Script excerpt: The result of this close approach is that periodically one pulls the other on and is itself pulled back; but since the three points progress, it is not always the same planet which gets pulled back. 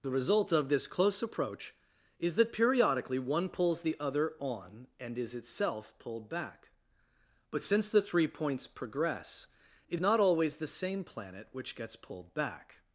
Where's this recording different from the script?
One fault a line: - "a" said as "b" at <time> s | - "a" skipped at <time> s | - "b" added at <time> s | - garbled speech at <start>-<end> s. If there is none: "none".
- "is" skipped at 10.0 s